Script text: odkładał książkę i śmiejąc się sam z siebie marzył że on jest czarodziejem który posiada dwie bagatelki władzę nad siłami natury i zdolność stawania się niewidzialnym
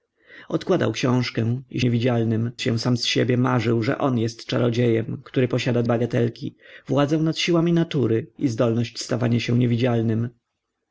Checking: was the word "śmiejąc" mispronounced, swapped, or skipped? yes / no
yes